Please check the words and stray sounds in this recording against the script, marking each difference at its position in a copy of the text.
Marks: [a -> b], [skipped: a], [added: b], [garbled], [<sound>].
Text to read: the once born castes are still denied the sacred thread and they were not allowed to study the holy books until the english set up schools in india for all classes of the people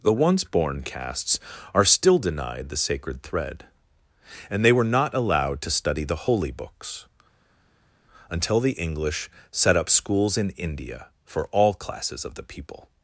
the once born castes are still denied the sacred thread and they were not allowed to study the holy books until the english set up schools in india for all classes of the people